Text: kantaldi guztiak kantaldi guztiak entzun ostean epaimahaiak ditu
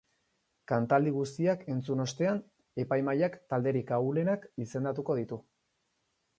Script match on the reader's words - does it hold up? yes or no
no